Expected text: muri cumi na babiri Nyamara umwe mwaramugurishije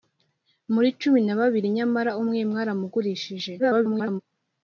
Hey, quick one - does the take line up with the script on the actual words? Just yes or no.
no